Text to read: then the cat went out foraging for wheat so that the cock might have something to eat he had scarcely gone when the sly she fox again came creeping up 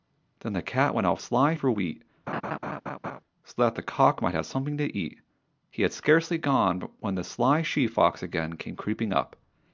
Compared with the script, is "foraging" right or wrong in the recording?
wrong